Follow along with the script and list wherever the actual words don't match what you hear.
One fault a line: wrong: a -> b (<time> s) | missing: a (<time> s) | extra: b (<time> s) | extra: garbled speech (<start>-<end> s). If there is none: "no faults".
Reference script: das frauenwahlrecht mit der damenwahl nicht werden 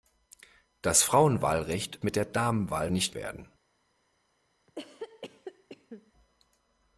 no faults